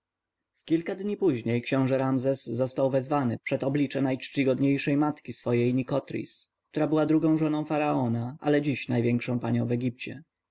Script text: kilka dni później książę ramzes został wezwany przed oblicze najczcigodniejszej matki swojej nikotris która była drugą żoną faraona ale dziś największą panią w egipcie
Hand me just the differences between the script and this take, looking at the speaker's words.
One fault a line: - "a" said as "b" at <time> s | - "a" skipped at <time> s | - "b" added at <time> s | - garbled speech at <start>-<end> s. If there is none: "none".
none